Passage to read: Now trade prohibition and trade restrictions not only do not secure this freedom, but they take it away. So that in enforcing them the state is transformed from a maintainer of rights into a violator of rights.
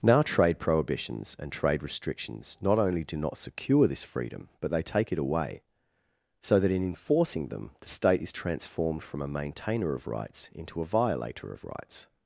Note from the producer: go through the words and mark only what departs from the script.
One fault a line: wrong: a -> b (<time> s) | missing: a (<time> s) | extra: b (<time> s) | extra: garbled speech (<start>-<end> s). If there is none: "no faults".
wrong: prohibition -> prohibitions (0.6 s)